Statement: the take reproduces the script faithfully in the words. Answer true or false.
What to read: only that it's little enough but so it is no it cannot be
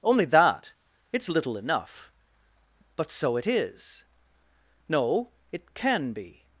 false